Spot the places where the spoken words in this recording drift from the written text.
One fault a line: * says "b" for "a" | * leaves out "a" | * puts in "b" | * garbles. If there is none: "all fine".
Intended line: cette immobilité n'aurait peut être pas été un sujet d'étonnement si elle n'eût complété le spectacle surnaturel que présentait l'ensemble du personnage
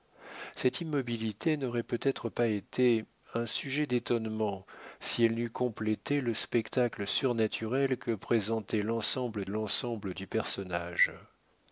* puts in "l'ensemble"